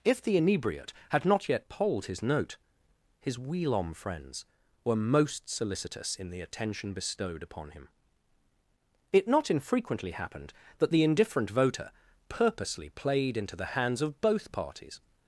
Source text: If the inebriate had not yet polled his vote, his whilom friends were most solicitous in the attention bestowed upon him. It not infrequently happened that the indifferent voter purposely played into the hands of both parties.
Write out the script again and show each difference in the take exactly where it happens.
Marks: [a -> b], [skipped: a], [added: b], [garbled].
If the inebriate had not yet polled his [vote, -> note] his whilom friends were most solicitous in the attention bestowed upon him. It not infrequently happened that the indifferent voter purposely played into the hands of both parties.